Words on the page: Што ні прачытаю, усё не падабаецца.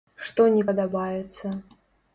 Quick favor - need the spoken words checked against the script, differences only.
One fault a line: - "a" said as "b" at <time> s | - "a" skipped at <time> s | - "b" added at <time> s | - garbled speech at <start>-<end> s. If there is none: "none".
- "прачытаю усё не" skipped at 0.6 s